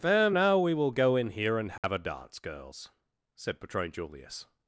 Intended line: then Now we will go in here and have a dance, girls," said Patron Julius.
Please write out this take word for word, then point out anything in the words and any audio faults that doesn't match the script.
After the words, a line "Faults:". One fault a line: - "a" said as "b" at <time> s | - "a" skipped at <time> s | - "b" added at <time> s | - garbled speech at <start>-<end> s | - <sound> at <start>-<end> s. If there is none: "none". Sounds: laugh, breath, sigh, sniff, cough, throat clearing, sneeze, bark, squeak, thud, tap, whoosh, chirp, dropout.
then Now we will go in here and have a dance, girls," said Patron Julius.
Faults:
- dropout at 1.8-1.8 s